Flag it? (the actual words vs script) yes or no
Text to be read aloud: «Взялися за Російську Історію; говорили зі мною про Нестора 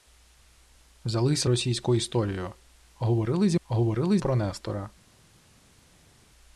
yes